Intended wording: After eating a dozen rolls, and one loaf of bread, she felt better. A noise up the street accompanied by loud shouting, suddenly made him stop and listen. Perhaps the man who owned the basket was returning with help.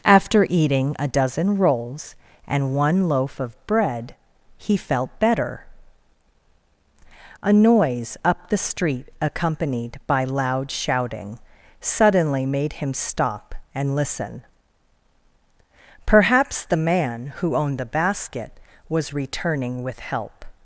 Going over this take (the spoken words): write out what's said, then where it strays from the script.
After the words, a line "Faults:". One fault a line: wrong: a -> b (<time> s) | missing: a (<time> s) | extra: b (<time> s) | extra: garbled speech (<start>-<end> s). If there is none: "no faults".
After eating a dozen rolls, and one loaf of bread, he felt better. A noise up the street accompanied by loud shouting, suddenly made him stop and listen. Perhaps the man who owned the basket was returning with help.
Faults:
wrong: she -> he (4.6 s)